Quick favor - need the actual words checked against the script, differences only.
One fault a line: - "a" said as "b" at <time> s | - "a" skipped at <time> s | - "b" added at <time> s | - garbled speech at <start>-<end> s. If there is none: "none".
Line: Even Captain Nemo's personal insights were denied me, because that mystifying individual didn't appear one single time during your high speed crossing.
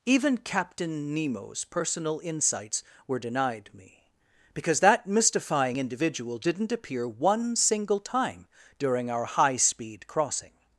- "your" said as "our" at 9.1 s